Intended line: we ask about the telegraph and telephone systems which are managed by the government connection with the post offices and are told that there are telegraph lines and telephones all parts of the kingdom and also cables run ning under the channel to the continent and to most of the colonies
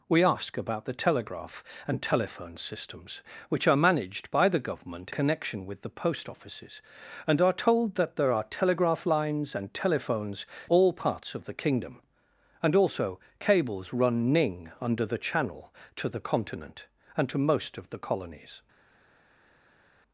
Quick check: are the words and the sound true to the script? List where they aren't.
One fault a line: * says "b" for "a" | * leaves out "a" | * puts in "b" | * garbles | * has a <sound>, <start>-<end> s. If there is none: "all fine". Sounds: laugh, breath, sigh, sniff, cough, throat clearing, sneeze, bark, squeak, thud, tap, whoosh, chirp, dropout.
all fine